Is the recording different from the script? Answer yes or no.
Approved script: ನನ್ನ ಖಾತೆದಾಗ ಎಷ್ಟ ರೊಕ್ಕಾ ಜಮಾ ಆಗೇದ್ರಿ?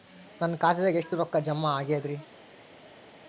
no